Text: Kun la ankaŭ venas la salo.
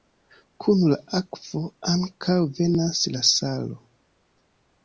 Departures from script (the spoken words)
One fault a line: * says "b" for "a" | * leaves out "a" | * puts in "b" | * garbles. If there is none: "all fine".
* puts in "akvo"